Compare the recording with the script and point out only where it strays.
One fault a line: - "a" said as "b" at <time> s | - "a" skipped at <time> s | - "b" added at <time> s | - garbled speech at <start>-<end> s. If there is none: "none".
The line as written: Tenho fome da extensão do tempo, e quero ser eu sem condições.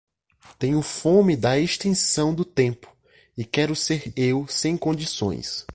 none